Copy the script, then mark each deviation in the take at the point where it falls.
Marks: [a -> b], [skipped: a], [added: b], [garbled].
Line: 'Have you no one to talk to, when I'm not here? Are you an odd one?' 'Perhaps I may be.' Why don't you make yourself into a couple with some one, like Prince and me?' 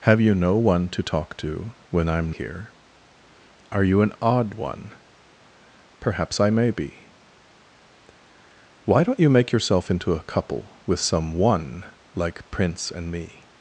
'Have you no one to talk to, when I'm [skipped: not] here? Are you an odd one?' 'Perhaps I may be.' Why don't you make yourself into a couple with some one, like Prince and me?'